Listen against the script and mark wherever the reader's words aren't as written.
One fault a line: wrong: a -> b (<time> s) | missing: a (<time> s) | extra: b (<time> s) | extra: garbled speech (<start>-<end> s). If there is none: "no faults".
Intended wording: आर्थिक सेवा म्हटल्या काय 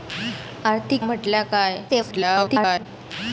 missing: सेवा (1.0 s)
extra: garbled speech (1.9-2.9 s)